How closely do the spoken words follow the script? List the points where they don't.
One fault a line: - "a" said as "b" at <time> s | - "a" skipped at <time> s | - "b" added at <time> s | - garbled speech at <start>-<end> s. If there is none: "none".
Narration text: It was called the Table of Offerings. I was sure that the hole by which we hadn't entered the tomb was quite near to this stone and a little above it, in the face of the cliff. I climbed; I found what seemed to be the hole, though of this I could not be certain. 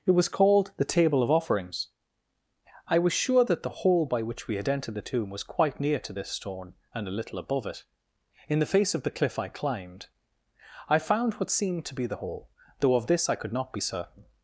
- "hadn't" said as "had" at 4.5 s